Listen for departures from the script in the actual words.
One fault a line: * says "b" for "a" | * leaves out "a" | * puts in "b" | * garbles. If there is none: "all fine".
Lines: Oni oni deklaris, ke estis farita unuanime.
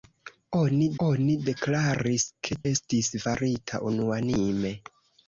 all fine